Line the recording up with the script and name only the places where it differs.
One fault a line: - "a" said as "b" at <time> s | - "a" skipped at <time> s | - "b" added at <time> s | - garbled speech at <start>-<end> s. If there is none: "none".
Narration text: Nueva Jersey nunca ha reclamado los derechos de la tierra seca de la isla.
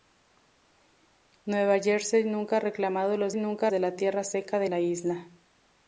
- "derechos" said as "nunca" at 3.3 s